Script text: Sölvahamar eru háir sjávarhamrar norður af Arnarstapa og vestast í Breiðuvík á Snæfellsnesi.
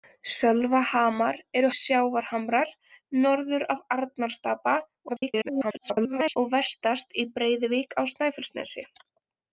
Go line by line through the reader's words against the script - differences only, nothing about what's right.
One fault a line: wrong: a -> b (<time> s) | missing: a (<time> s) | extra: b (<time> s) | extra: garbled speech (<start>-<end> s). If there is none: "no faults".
missing: háir (1.7 s)
extra: garbled speech (5.1-6.4 s)